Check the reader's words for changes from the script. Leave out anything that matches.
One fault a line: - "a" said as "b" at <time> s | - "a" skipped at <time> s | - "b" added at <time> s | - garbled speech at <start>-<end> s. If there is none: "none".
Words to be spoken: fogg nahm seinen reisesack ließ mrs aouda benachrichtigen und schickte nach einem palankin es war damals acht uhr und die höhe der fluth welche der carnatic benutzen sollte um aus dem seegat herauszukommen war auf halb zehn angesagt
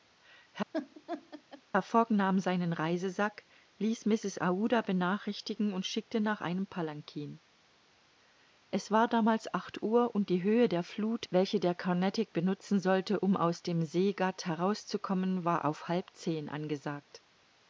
none